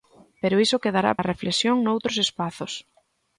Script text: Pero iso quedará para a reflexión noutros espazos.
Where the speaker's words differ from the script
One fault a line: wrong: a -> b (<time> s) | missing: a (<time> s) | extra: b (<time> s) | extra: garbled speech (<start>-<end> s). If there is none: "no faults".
missing: para (1.1 s)